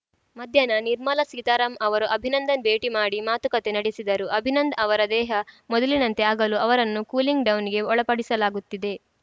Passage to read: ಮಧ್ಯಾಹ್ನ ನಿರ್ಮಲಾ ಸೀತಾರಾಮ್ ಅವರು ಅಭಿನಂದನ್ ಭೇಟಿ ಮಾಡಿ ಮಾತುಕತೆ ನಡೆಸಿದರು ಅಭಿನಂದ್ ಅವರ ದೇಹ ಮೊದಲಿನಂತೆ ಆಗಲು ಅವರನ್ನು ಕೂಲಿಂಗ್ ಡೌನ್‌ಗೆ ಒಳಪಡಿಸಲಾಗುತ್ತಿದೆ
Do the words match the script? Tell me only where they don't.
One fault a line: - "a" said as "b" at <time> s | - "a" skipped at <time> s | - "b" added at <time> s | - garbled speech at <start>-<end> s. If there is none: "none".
none